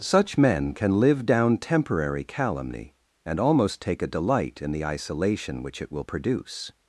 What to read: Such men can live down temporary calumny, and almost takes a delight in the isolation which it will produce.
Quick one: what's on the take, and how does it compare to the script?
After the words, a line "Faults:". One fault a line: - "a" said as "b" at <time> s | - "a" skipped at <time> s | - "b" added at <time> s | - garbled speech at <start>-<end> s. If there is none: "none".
Such men can live down temporary calumny, and almost take a delight in the isolation which it will produce.
Faults:
- "takes" said as "take" at 3.8 s